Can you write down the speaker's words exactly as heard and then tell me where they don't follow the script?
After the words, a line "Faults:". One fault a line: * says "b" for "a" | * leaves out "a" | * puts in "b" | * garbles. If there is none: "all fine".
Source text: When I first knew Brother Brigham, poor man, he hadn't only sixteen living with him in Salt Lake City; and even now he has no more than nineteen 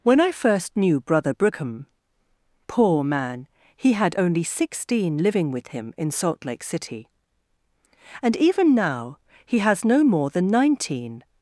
When I first knew Brother Brigham, poor man, he had only sixteen living with him in Salt Lake City; and even now he has no more than nineteen
Faults:
* says "had" for "hadn't"